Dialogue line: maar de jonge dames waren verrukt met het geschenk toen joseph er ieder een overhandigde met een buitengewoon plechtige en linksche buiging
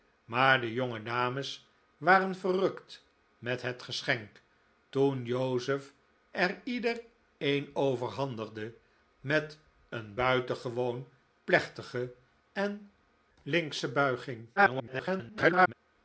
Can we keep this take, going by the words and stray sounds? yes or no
no